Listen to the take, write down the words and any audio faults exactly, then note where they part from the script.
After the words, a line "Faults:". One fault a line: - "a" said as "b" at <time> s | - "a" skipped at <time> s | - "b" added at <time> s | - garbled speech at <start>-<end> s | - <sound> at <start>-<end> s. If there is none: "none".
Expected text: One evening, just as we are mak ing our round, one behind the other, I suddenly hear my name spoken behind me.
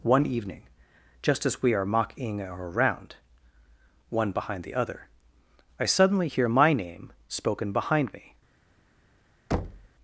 One evening, just as we are mocking our round, one behind the other, I suddenly hear my name spoken behind me.
Faults:
- "mak ing" said as "mocking" at 1.9 s
- thud at 9.5-9.9 s